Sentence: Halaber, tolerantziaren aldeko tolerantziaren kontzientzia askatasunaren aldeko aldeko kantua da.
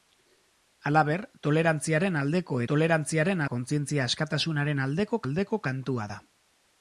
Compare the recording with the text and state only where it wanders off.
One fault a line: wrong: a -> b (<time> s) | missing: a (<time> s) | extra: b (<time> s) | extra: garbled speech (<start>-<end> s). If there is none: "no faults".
no faults